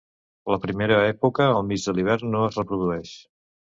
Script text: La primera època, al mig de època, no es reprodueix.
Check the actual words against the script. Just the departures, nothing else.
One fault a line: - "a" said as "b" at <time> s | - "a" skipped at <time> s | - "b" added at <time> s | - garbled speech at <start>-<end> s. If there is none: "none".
- "època" said as "l'hivern" at 2.0 s